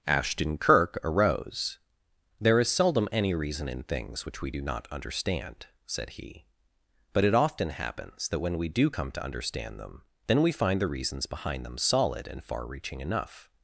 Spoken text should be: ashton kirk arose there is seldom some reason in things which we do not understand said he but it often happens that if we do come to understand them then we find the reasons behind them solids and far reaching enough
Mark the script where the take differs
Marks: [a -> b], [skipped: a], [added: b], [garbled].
ashton kirk arose there is seldom [some -> any] reason in things which we do not understand said he but it often happens that [if -> when] we do come to understand them then we find the reasons behind them [solids -> solid] and far reaching enough